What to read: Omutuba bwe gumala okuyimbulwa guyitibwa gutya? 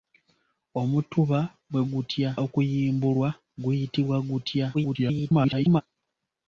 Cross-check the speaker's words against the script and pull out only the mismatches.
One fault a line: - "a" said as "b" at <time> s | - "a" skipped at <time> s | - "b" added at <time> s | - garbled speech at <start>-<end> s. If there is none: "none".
- "gumala" said as "gutya" at 1.9 s
- garbled speech at 4.7-5.8 s